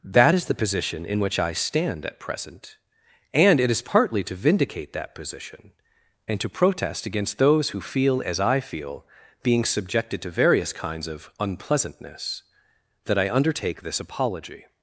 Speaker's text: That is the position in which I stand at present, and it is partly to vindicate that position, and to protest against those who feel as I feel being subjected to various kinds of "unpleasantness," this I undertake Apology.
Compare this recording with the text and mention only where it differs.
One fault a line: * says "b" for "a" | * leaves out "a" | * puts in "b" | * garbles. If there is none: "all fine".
* says "that" for "this"
* puts in "this"